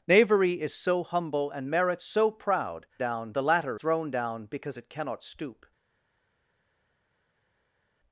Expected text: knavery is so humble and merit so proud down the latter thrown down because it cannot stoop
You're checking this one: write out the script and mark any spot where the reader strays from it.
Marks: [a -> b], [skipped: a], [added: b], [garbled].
knavery is so humble and merit so proud down the latter thrown down because it cannot stoop